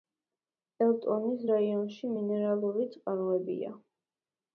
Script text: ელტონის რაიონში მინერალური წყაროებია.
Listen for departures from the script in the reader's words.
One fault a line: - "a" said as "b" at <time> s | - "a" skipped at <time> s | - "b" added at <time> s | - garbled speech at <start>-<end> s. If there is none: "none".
none